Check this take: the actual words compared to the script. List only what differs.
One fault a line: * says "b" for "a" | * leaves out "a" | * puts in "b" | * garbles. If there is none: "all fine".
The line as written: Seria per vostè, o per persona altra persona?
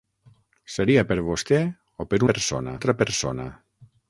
all fine